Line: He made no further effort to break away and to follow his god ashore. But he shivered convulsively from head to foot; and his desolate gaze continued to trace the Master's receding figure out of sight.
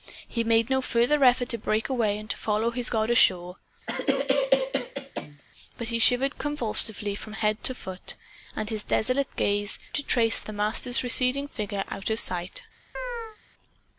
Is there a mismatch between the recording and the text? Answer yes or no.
yes